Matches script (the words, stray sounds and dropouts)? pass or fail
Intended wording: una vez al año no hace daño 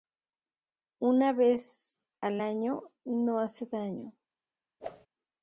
fail